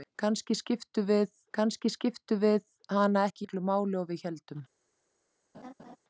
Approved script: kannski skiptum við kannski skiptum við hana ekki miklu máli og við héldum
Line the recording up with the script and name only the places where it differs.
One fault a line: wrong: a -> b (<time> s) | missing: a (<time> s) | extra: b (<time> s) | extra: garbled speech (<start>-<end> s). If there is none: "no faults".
no faults